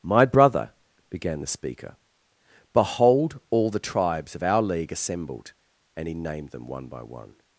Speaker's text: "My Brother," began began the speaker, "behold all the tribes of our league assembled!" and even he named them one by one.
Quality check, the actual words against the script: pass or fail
fail